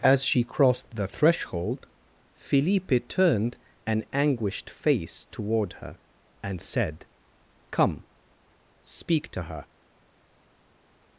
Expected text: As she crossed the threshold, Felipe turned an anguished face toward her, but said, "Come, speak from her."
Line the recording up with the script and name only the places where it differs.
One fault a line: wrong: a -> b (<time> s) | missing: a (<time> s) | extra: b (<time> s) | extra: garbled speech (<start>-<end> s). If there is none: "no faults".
wrong: but -> and (6.4 s)
wrong: from -> to (9.3 s)